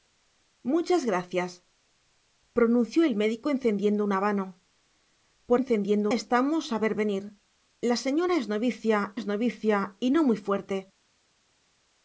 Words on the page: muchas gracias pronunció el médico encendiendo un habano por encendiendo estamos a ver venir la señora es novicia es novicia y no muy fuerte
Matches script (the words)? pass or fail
pass